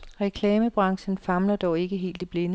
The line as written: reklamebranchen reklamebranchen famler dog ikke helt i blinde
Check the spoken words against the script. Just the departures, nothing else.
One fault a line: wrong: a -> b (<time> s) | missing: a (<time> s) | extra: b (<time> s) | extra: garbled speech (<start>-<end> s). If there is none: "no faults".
missing: reklamebranchen (1.2 s)